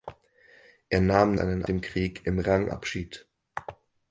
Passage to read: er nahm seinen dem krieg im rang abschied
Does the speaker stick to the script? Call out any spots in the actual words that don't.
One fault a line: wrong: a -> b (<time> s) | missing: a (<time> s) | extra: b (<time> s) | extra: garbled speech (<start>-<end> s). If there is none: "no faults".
no faults